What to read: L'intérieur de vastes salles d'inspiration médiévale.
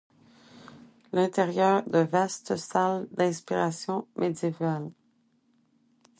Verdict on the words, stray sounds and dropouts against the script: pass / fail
pass